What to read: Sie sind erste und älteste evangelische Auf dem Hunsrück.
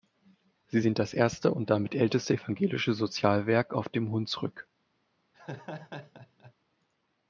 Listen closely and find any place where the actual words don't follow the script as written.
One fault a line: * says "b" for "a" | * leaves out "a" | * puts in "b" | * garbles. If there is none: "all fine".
* puts in "das"
* puts in "damit"
* puts in "Sozialwerk"